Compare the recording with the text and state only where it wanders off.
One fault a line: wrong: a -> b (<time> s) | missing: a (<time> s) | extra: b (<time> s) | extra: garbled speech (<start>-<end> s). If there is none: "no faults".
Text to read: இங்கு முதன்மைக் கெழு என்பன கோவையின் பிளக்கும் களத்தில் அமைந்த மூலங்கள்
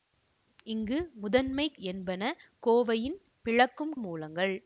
missing: கெழு (1.8 s)
missing: களத்தில் அமைந்த (3.9 s)